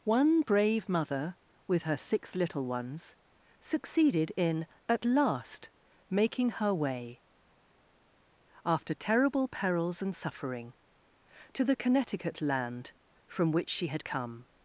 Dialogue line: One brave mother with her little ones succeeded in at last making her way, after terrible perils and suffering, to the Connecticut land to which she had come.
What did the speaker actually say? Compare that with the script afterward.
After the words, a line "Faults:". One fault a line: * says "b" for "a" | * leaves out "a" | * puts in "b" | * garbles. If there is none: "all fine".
One brave mother with her six little ones succeeded in at last making her way, after terrible perils and suffering, to the Connecticut land from which she had come.
Faults:
* puts in "six"
* says "from" for "to"